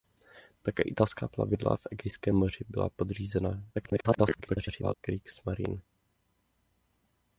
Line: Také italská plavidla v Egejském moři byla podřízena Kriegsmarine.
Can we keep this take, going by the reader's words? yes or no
no